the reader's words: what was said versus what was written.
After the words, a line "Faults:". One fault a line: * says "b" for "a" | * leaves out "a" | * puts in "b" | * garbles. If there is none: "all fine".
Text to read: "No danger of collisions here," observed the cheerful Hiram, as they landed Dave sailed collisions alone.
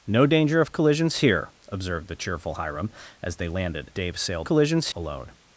"No danger of collisions here," observed the cheerful Hiram, as they landed Dave sailed collisions alone.
Faults:
all fine